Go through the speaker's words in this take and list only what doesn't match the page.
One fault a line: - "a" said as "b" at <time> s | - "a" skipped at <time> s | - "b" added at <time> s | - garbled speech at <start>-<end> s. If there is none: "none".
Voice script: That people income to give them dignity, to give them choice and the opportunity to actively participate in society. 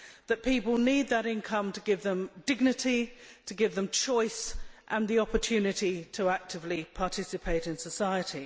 - "need that" added at 0.8 s